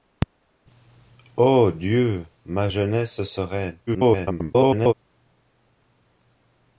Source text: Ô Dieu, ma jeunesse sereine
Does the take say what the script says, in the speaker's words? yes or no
no